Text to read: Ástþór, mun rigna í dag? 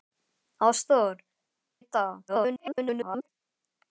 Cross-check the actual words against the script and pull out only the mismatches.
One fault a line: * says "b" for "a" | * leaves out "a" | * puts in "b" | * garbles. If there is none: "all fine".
* leaves out "mun rigna"
* garbles